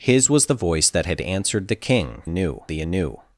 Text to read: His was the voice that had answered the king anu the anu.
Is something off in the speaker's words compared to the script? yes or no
no